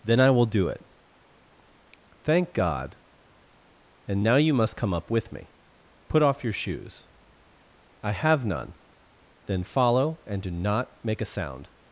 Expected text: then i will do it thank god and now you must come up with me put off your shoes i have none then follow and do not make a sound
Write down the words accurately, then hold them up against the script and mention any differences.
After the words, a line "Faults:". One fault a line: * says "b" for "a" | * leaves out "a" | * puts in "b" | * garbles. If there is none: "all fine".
then i will do it thank god and now you must come up with me put off your shoes i have none then follow and do not make a sound
Faults:
all fine